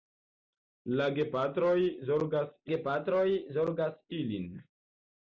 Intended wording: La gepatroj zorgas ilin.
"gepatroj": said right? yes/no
yes